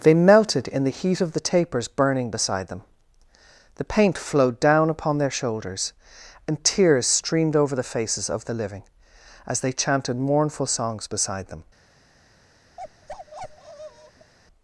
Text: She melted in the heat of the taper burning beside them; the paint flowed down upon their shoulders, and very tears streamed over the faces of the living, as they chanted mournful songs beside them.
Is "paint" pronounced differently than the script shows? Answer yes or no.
no